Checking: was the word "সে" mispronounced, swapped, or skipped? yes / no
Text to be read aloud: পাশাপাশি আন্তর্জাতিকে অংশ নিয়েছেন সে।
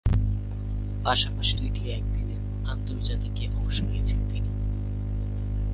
yes